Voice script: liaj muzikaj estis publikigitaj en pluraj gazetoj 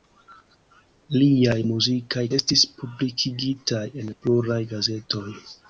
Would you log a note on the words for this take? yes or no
no